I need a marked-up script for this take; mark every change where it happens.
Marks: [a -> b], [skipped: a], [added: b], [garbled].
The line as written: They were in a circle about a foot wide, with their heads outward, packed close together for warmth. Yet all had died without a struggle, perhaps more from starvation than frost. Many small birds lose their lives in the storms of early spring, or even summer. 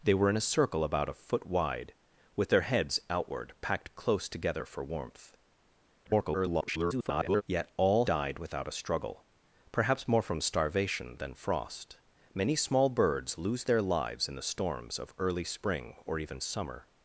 They were in a circle about a foot wide, with their heads outward, packed close together for warmth. [garbled] Yet all [skipped: had] died without a struggle, perhaps more from starvation than frost. Many small birds lose their lives in the storms of early spring, or even summer.